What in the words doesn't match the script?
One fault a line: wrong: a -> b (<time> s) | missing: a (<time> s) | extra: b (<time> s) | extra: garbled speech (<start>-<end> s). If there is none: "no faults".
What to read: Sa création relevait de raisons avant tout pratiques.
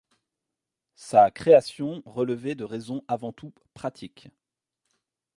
no faults